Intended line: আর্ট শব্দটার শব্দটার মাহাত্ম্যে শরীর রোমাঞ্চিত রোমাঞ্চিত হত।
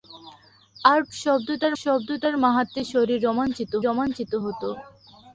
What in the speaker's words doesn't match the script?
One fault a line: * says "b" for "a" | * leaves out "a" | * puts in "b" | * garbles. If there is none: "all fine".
all fine